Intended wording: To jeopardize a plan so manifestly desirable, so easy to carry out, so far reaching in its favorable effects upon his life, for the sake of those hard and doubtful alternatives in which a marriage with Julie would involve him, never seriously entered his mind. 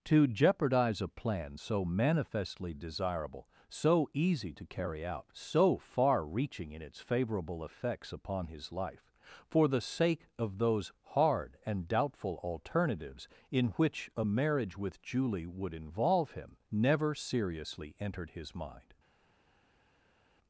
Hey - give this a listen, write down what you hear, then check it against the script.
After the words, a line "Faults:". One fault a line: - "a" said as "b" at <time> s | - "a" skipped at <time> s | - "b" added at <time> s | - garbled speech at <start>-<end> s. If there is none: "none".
To jeopardize a plan so manifestly desirable, so easy to carry out, so far reaching in its favorable effects upon his life, for the sake of those hard and doubtful alternatives in which a marriage with Julie would involve him, never seriously entered his mind.
Faults:
none